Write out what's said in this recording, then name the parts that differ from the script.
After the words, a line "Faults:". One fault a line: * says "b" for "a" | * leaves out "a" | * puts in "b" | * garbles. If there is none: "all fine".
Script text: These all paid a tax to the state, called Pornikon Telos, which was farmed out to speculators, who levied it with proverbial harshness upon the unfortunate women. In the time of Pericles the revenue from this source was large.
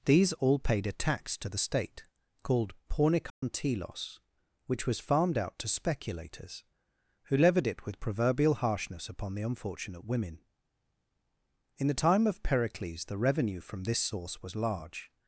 These all paid a tax to the state, called Pornikon Telos, which was farmed out to speculators, who levied it with proverbial harshness upon the unfortunate women. In the time of Pericles the revenue from this source was large.
Faults:
all fine